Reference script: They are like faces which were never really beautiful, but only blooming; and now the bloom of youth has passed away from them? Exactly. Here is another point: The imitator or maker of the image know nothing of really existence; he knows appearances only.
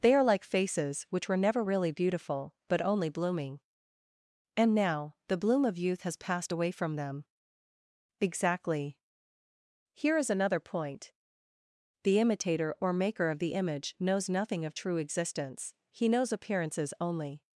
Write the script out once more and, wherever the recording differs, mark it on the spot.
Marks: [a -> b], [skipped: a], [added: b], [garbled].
They are like faces which were never really beautiful, but only blooming; and now the bloom of youth has passed away from them? Exactly. Here is another point: The imitator or maker of the image [know -> knows] nothing of [really -> true] existence; he knows appearances only.